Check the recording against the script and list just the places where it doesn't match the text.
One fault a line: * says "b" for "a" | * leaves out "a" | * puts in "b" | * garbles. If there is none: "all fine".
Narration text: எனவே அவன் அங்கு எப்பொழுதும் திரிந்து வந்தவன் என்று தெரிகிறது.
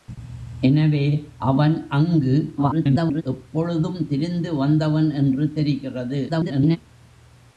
* garbles
* garbles